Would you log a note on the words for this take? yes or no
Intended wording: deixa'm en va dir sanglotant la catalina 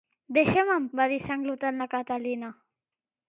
no